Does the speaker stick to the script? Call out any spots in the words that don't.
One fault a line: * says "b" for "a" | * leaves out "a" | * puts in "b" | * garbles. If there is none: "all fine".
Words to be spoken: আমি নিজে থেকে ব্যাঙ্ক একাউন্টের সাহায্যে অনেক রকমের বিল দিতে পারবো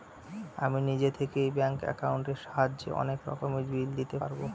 all fine